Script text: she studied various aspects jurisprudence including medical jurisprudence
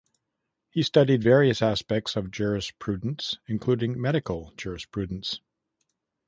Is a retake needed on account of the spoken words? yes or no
yes